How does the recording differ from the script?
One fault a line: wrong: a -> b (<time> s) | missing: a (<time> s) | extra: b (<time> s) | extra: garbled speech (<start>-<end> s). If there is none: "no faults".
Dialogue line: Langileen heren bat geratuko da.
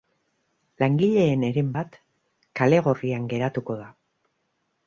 extra: kale gorrian (2.6 s)